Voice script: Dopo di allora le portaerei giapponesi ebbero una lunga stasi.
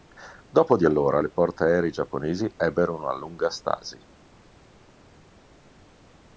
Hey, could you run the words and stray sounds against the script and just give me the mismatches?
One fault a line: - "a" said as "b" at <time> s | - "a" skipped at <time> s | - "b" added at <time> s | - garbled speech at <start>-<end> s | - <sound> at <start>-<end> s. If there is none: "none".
none